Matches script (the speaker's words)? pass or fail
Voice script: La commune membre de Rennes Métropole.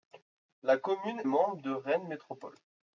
pass